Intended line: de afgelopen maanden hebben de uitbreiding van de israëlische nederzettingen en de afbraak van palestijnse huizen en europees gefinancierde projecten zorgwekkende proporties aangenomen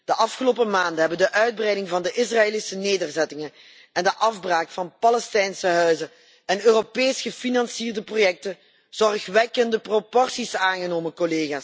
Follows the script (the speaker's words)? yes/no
yes